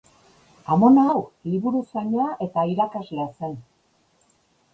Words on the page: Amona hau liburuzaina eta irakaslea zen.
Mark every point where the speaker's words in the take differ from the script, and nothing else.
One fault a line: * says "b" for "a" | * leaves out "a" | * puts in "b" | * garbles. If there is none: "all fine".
all fine